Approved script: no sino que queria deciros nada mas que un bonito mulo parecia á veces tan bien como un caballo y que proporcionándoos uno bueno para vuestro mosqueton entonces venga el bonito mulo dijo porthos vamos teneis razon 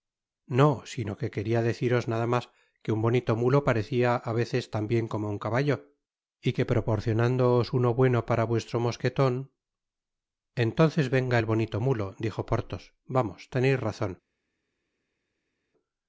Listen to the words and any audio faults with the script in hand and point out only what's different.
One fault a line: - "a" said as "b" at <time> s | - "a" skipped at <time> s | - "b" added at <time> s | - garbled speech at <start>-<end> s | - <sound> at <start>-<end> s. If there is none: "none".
none